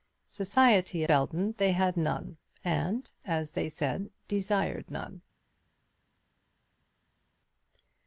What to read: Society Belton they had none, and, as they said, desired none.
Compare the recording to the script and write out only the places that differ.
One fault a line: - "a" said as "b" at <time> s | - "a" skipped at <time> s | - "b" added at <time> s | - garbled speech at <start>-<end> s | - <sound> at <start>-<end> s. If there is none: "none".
none